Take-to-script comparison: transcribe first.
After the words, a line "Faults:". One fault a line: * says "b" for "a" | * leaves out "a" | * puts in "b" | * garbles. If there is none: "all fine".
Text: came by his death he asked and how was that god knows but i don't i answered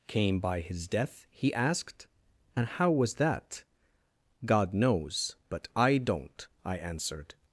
came by his death he asked and how was that god knows but i don't i answered
Faults:
all fine